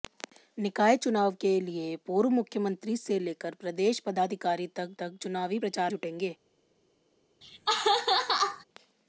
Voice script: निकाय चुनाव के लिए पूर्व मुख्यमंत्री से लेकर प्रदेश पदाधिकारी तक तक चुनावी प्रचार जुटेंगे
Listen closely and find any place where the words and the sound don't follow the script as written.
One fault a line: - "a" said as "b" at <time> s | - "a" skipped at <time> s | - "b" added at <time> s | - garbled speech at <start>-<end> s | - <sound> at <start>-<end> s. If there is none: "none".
- laugh at 7.4-8.6 s